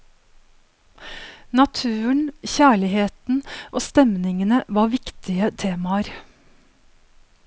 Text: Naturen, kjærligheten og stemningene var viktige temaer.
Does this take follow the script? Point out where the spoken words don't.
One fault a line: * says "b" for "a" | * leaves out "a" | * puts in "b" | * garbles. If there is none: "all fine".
all fine